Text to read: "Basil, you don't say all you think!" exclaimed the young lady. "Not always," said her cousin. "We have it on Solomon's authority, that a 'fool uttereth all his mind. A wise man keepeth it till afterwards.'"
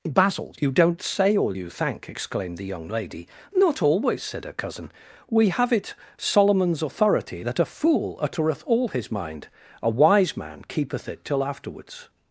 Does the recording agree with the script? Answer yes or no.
no